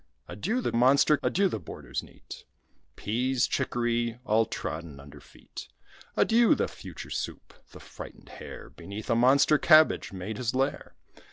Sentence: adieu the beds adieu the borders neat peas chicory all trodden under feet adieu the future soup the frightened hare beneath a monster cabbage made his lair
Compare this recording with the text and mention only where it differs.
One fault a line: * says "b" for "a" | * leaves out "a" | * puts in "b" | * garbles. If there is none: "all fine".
* says "monster" for "beds"